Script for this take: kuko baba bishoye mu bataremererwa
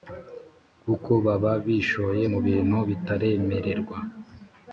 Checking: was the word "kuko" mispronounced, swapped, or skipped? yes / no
no